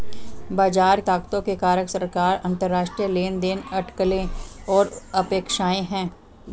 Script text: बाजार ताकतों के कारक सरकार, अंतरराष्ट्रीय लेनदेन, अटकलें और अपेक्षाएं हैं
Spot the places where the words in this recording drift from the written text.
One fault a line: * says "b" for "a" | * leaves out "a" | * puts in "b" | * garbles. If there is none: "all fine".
all fine